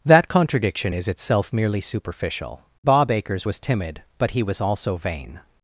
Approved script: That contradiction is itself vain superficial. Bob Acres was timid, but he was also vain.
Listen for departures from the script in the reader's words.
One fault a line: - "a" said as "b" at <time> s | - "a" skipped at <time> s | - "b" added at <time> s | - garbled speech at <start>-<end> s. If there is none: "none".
- "vain" said as "merely" at 1.5 s